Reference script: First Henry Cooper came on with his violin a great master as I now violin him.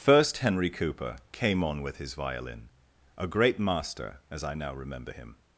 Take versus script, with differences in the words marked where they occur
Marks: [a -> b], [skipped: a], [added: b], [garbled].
First Henry Cooper came on with his violin a great master as I now [violin -> remember] him.